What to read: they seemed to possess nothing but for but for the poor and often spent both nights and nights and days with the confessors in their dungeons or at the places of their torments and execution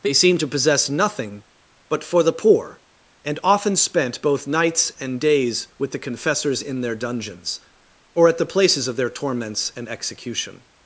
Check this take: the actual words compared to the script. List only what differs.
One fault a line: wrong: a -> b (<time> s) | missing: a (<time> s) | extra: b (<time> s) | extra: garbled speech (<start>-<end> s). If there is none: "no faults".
missing: but for (2.2 s)
missing: nights and (5.2 s)